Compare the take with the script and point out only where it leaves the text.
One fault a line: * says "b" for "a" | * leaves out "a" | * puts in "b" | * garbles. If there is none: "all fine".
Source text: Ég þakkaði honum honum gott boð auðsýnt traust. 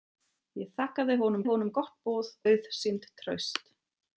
all fine